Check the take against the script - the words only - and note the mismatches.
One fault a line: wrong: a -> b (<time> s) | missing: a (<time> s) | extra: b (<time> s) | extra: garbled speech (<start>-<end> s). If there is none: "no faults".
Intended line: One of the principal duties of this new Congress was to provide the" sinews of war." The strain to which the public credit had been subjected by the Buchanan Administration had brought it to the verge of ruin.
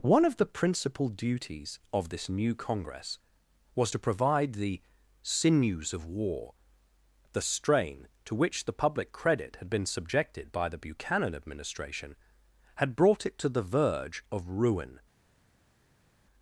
no faults